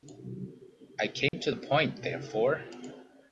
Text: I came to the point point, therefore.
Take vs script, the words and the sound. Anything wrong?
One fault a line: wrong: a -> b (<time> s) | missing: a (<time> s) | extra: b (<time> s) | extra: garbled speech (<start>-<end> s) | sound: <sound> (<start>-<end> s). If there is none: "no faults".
sound: dropout (1.3-1.3 s)
missing: point (2.0 s)